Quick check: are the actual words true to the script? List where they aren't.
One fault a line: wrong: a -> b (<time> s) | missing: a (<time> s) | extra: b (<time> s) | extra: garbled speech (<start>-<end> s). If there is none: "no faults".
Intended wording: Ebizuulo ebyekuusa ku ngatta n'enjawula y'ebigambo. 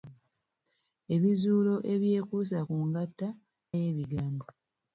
missing: n'enjawula (3.3 s)